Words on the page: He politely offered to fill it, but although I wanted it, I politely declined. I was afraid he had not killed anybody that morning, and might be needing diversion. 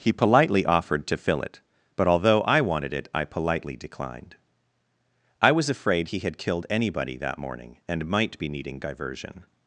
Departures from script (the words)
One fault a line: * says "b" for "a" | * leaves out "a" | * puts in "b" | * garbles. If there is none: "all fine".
* leaves out "not"